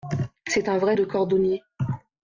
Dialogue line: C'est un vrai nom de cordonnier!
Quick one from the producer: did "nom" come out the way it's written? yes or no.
no